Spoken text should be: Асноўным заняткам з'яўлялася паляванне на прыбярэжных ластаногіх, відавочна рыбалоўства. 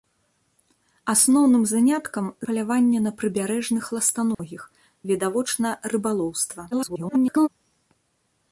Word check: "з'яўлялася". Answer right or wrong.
wrong